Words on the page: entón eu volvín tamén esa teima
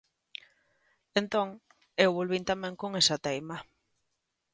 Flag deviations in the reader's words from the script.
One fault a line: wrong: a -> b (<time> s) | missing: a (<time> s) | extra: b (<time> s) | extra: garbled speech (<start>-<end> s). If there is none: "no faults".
extra: con (2.8 s)